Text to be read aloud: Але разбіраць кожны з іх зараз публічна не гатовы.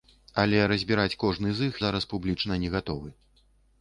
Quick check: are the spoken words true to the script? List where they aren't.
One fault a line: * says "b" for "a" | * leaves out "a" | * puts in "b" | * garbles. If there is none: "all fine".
all fine